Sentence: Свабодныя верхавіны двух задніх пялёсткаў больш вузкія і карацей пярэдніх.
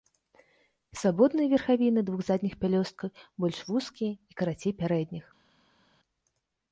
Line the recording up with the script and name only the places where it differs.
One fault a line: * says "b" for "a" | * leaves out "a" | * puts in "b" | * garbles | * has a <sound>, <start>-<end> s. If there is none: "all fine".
all fine